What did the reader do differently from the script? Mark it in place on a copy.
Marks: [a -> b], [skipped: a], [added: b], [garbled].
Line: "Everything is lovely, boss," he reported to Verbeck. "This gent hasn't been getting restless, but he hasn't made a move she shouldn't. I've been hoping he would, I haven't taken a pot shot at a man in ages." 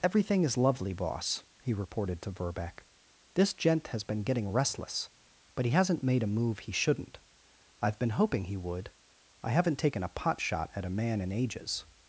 "Everything is lovely, boss," he reported to Verbeck. "This gent [hasn't -> has] been getting restless, but he hasn't made a move [she -> he] shouldn't. I've been hoping he would, I haven't taken a pot shot at a man in ages."